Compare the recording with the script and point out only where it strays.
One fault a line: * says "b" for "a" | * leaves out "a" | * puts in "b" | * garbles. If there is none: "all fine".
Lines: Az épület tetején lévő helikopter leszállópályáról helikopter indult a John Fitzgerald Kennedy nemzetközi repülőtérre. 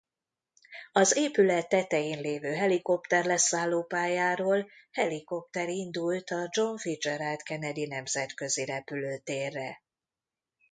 all fine